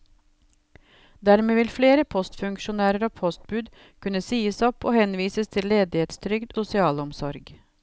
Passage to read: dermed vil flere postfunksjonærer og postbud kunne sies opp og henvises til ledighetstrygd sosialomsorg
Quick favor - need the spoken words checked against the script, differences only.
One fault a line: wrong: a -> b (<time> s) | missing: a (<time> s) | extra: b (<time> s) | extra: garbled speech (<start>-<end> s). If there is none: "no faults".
no faults